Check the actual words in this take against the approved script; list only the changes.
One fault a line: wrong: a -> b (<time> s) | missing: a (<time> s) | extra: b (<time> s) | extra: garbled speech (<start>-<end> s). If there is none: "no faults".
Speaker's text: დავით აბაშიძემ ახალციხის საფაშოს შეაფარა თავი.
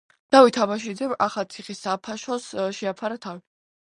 no faults